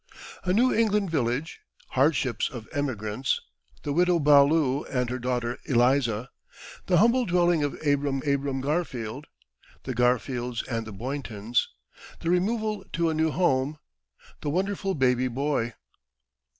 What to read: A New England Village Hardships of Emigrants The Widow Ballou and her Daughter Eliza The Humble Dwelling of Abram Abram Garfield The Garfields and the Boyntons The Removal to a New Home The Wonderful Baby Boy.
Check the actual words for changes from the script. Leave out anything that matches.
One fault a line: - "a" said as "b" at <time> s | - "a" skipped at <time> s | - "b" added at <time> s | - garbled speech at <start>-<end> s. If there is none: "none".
none